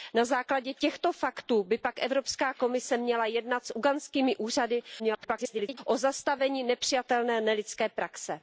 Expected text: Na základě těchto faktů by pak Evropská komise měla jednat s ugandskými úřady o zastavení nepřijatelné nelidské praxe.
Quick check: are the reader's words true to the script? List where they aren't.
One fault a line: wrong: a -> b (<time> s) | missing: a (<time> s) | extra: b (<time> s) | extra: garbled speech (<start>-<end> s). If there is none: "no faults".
extra: garbled speech (5.0-5.8 s)